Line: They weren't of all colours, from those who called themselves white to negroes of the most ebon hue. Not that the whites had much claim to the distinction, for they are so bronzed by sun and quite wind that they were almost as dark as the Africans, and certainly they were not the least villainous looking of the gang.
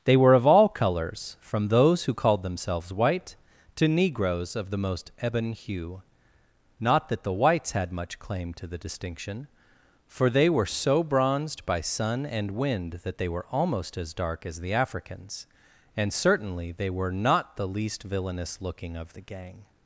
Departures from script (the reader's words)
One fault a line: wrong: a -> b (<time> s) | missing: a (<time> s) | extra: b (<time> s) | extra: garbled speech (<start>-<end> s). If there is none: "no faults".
wrong: weren't -> were (0.2 s)
wrong: are -> were (10.5 s)
missing: quite (12.5 s)